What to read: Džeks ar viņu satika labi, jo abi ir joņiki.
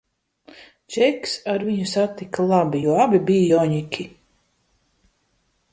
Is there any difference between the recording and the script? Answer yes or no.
yes